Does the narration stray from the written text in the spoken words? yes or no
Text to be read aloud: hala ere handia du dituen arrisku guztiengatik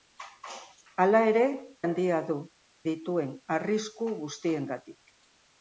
no